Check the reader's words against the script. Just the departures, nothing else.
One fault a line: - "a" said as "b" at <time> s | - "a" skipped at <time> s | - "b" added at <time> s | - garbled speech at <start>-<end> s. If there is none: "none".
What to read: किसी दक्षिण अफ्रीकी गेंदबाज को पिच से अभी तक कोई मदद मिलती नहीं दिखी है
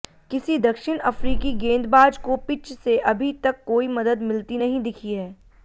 none